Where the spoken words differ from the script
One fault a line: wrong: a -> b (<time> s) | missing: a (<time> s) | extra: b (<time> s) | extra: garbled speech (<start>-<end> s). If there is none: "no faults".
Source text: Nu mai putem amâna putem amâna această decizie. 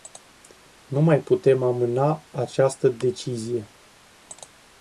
missing: putem amâna (2.3 s)